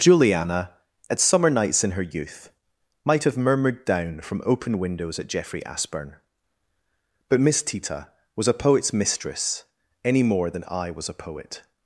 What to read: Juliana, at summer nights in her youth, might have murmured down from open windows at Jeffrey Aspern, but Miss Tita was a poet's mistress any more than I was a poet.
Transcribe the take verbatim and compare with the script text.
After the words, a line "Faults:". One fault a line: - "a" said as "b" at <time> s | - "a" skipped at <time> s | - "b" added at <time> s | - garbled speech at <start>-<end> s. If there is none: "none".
Juliana, at summer nights in her youth, might have murmured down from open windows at Jeffrey Aspern, but Miss Tita was a poet's mistress any more than I was a poet.
Faults:
none